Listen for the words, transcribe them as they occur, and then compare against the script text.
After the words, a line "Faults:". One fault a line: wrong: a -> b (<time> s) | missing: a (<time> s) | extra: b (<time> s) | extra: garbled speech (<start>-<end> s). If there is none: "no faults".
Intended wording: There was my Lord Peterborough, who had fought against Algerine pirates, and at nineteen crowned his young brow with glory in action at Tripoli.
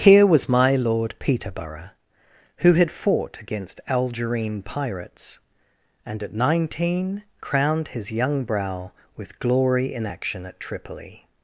Here was my Lord Peterborough, who had fought against Algerine pirates, and at nineteen crowned his young brow with glory in action at Tripoli.
Faults:
wrong: There -> Here (0.0 s)